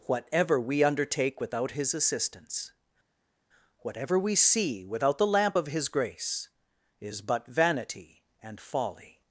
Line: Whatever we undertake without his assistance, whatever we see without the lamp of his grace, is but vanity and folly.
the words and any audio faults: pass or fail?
pass